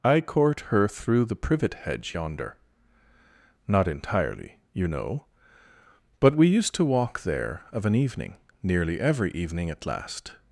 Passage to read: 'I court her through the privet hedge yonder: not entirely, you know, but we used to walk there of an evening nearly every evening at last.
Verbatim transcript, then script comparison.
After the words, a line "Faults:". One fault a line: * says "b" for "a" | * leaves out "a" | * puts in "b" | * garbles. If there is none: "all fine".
'I court her through the privet hedge yonder: not entirely, you know, but we used to walk there of an evening nearly every evening at last.
Faults:
all fine